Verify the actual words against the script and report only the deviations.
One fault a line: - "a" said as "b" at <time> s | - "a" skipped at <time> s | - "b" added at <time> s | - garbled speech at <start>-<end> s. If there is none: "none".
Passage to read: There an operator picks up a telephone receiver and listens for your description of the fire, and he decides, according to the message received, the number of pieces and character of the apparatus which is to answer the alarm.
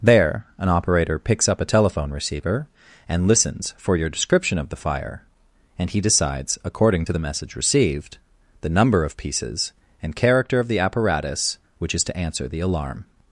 none